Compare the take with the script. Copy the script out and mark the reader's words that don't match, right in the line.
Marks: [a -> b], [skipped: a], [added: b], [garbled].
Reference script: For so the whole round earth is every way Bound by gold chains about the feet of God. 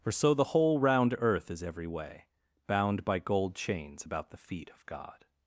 For so the whole round earth is every way Bound by gold chains about the feet of God.